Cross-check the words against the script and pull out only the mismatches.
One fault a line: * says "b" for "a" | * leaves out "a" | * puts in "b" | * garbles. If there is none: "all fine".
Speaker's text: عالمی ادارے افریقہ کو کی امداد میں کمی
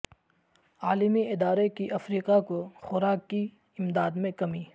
* puts in "کی"
* puts in "خوراک"